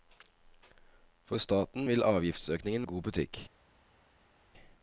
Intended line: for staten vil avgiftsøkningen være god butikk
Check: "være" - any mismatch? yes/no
yes